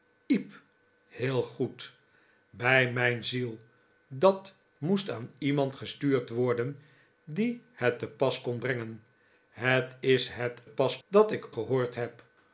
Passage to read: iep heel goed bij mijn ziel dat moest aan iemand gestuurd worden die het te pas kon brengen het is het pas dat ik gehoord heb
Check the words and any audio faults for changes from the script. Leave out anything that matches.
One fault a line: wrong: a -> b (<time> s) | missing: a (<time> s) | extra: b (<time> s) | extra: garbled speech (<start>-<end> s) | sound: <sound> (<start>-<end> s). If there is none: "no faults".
no faults